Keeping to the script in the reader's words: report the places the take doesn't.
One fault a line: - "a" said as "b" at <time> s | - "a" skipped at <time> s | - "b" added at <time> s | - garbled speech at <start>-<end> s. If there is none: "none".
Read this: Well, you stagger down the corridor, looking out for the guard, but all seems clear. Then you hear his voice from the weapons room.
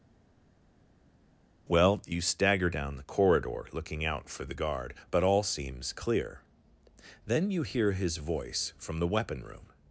- "weapons" said as "weapon" at 9.1 s